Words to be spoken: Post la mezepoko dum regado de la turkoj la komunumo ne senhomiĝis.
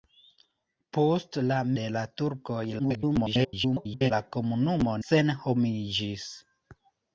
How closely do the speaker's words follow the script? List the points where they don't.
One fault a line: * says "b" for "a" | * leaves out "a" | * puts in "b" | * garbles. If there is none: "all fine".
* leaves out "mezepoko dum regado"
* garbles
* leaves out "ne"